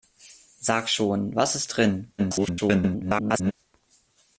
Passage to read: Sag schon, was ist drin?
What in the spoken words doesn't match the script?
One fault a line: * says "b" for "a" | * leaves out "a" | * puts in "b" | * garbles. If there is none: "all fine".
* garbles